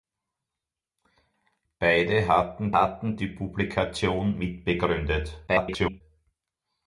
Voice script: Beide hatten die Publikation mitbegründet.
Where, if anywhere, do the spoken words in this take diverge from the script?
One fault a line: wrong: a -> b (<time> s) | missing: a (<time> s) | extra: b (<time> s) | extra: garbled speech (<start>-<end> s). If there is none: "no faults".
extra: hatten (2.7 s)
extra: garbled speech (5.5-6.0 s)